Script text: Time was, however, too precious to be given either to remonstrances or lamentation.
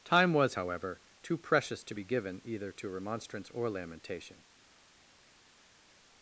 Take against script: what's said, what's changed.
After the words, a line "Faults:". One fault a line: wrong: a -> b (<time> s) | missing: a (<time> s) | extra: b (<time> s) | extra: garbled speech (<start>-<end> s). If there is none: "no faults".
Time was, however, too precious to be given either to remonstrance or lamentation.
Faults:
wrong: remonstrances -> remonstrance (2.9 s)